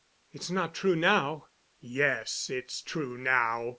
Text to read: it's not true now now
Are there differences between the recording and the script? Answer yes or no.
yes